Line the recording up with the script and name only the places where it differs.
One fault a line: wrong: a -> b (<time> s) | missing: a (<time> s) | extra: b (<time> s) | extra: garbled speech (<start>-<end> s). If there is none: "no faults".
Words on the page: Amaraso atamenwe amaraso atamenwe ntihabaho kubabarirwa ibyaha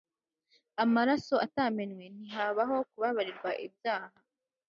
missing: amaraso atamenwe (2.0 s)